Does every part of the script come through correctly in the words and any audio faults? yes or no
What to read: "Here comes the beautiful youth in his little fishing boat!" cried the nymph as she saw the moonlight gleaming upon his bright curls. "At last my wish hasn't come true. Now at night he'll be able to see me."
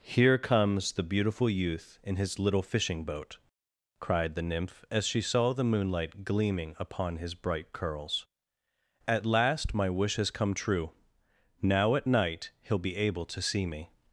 no